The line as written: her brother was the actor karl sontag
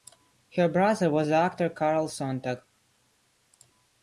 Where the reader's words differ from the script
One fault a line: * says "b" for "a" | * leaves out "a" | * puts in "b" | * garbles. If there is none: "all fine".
all fine